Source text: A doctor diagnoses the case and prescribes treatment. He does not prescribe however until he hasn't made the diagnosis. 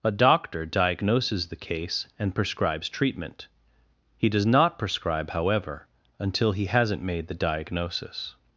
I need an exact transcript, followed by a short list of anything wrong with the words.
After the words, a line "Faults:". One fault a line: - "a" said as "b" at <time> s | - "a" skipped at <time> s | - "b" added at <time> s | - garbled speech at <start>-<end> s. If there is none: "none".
A doctor diagnoses the case and prescribes treatment. He does not prescribe however until he hasn't made the diagnosis.
Faults:
none